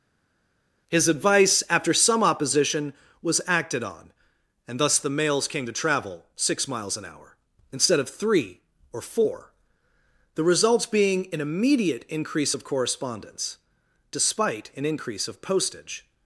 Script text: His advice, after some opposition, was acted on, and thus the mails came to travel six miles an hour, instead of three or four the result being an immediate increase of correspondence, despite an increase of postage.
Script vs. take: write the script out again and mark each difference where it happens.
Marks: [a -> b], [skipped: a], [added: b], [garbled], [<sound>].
His advice, after some opposition, was acted on, and thus the mails came to travel six miles an hour, instead of three or four the [result -> results] being an immediate increase of correspondence, despite an increase of postage.